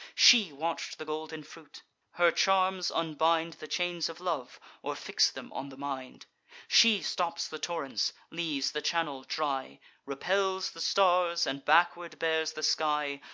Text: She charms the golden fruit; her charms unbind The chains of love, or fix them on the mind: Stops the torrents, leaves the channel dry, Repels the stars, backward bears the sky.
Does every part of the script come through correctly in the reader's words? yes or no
no